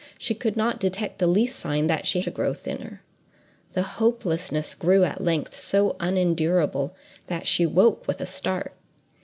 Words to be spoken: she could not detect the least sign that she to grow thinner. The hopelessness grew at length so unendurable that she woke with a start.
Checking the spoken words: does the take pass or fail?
pass